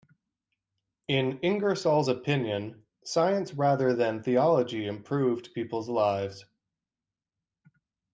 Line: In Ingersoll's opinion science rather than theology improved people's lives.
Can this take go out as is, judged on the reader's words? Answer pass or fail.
pass